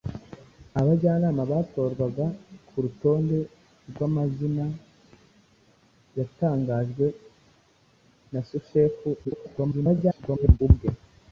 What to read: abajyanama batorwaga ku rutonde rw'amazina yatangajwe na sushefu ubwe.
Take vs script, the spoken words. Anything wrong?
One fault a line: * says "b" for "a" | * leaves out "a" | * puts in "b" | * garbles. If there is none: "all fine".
* garbles